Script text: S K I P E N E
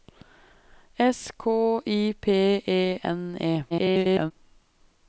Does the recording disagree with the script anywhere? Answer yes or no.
yes